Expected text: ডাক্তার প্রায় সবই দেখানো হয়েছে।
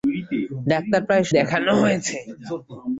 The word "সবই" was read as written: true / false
false